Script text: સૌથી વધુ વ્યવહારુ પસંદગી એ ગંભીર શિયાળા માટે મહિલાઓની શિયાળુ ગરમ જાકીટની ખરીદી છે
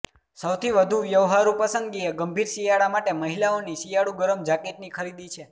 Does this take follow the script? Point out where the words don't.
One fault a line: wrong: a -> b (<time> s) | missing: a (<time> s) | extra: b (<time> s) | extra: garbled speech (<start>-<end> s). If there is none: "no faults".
no faults